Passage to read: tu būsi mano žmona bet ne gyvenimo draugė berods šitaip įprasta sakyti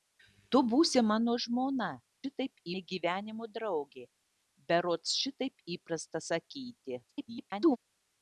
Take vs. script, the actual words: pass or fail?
fail